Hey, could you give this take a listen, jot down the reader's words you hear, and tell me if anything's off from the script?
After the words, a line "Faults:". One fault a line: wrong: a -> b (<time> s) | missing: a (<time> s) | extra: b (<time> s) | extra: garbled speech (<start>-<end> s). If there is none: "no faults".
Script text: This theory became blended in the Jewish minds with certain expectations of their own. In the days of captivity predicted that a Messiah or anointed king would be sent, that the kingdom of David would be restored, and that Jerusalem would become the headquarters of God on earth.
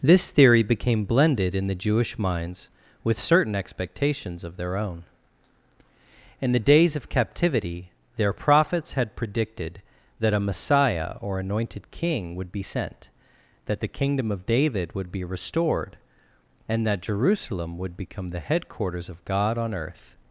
This theory became blended in the Jewish minds with certain expectations of their own. In the days of captivity their prophets had predicted that a Messiah or anointed king would be sent, that the kingdom of David would be restored, and that Jerusalem would become the headquarters of God on earth.
Faults:
extra: their prophets had (8.2 s)